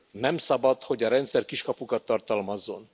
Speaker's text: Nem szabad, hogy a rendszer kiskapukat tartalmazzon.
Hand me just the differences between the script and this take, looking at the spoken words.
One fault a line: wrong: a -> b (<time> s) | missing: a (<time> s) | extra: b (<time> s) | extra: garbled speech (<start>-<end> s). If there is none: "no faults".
no faults